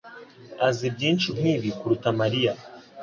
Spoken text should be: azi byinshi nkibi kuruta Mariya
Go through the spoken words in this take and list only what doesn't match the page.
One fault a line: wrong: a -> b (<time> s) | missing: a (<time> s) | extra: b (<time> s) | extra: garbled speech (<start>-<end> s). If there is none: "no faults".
no faults